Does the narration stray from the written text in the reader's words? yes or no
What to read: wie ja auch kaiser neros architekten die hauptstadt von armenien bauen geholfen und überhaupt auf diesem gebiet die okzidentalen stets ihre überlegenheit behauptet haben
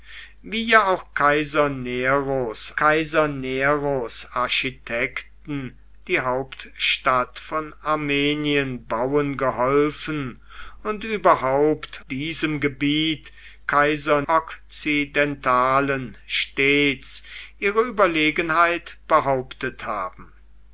yes